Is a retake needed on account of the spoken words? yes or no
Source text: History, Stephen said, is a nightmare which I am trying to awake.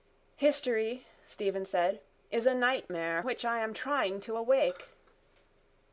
no